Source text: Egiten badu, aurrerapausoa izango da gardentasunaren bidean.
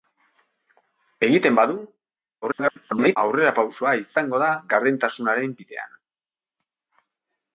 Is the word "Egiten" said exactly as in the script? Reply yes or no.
yes